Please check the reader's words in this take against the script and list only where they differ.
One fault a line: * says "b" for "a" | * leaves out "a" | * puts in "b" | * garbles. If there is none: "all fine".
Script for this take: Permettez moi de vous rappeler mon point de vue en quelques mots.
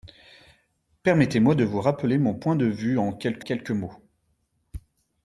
* puts in "quelques"